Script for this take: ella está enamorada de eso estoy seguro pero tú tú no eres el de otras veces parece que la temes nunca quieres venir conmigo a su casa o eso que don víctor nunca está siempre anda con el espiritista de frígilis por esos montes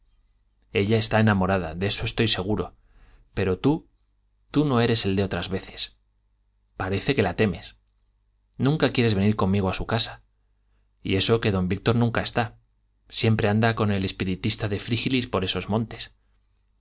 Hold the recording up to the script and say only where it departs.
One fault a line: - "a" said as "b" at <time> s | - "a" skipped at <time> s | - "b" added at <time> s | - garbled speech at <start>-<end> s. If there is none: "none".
- "o" said as "y" at 11.0 s